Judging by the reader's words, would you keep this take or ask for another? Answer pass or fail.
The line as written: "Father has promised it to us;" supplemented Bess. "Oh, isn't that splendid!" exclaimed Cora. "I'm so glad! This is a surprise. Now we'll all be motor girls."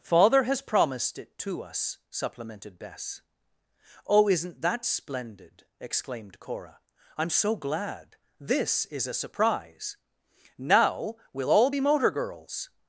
pass